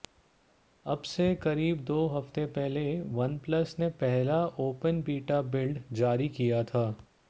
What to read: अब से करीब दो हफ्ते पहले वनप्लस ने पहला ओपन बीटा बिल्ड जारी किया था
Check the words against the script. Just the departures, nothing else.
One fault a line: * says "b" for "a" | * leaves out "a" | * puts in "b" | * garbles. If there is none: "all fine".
all fine